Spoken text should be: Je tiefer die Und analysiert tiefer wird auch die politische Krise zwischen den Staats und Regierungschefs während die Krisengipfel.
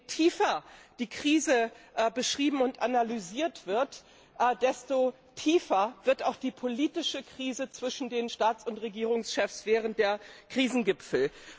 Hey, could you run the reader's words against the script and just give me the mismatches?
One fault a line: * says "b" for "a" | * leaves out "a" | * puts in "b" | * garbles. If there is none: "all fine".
* puts in "Krise beschrieben"
* puts in "wird desto"
* says "der" for "die"